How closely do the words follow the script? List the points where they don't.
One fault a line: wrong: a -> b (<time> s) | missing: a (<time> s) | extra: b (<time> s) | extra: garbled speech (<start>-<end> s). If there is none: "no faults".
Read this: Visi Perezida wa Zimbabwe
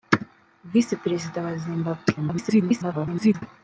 extra: garbled speech (2.2-3.4 s)